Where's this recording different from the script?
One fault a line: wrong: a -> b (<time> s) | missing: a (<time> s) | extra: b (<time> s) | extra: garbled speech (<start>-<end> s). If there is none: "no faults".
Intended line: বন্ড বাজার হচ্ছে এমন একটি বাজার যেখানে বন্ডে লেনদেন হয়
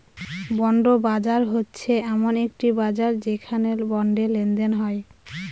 no faults